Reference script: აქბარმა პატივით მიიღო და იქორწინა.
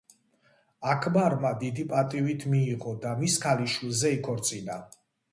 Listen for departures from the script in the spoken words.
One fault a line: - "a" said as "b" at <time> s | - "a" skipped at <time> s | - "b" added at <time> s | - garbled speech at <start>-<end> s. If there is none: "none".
- "დიდი" added at 1.6 s
- "მის ქალიშვილზე" added at 3.2 s